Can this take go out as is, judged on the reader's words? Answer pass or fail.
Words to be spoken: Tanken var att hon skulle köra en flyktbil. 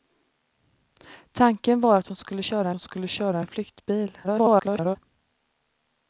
fail